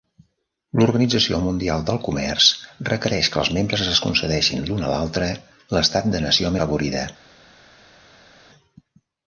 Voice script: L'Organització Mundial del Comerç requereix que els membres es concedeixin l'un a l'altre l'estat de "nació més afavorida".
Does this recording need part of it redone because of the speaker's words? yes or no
yes